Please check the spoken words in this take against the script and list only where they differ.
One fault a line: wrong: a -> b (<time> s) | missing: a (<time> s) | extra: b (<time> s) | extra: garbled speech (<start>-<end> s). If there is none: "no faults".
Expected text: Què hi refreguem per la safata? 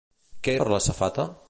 missing: refreguem (0.6 s)